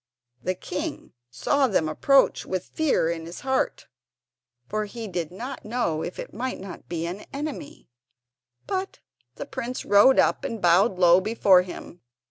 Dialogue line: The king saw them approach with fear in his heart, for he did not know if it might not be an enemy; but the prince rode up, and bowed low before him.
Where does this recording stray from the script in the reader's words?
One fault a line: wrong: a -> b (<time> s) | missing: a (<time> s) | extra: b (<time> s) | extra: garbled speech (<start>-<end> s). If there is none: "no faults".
no faults